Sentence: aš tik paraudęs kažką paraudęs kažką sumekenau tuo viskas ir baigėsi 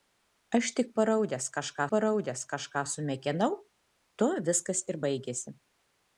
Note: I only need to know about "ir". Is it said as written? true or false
true